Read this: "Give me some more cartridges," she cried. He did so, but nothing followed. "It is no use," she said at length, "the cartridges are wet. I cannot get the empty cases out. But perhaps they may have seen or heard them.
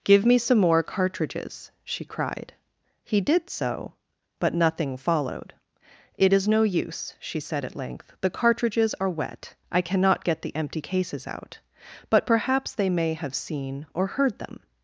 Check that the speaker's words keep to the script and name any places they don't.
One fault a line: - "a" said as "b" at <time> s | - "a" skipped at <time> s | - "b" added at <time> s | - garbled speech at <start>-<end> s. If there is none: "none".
none